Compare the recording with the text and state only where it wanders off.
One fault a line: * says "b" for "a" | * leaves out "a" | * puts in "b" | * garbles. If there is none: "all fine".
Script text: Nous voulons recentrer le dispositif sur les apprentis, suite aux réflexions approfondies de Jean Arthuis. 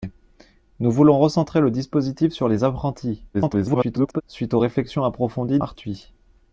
* garbles
* leaves out "de Jean"